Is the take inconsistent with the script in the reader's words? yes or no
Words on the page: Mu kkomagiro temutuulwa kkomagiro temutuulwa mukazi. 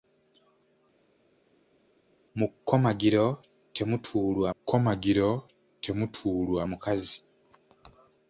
no